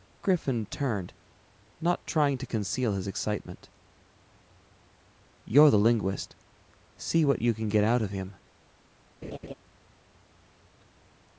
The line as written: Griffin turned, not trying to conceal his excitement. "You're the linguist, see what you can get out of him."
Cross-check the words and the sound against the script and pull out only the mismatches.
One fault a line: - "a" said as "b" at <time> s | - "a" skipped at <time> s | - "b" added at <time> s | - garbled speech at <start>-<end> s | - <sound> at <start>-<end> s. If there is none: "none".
- laugh at 9.2-9.5 s